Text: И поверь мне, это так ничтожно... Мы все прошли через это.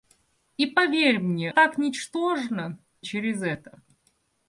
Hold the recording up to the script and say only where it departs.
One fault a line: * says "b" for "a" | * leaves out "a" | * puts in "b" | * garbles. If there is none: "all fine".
* leaves out "это"
* leaves out "Мы все прошли"